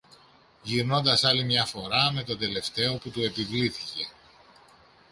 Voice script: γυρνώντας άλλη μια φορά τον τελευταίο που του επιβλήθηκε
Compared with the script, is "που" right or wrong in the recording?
right